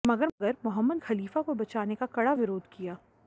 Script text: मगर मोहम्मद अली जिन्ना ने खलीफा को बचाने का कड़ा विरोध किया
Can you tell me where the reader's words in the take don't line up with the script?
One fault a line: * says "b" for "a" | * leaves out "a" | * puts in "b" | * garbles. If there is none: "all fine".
* leaves out "अली जिन्ना ने"